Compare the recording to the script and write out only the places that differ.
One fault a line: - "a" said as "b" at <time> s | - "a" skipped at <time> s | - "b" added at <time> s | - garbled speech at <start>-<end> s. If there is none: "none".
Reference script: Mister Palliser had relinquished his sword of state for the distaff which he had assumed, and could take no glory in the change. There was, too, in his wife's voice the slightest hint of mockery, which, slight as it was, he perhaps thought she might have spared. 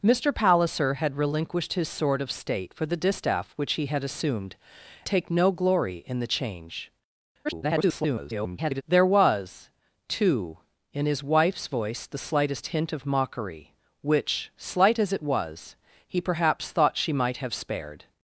- "and could" skipped at 4.5 s
- garbled speech at 7.4-8.8 s